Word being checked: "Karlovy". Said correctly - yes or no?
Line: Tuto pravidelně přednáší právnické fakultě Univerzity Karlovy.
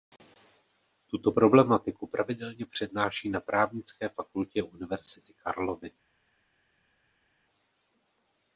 yes